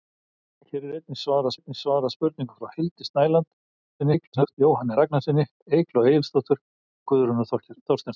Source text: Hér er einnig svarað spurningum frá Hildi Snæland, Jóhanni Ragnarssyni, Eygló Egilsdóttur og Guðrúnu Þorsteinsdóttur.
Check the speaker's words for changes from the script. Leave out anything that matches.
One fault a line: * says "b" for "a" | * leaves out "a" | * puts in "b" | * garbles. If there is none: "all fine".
* puts in "einnig svarað"
* garbles
* leaves out "og"